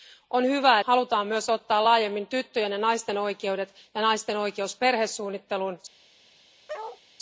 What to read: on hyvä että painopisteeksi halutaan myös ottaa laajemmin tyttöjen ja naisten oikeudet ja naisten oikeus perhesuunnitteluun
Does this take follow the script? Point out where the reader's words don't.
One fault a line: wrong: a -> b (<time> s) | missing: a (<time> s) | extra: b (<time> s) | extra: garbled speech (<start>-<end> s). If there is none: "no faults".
missing: että painopisteeksi (0.8 s)